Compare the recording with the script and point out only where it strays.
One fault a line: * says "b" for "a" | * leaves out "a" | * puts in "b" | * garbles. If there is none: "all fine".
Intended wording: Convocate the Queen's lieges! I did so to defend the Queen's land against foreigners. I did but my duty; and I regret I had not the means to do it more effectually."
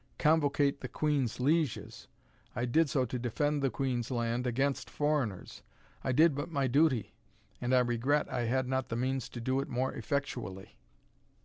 all fine